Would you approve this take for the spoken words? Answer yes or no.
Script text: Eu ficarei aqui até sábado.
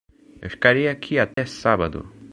yes